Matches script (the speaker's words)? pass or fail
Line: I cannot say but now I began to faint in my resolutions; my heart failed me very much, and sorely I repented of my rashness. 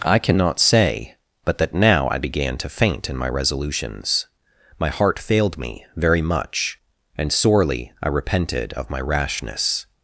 fail